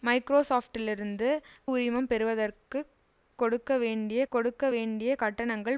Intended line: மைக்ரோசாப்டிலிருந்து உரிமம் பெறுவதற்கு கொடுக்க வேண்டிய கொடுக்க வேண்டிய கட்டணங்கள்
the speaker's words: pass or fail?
pass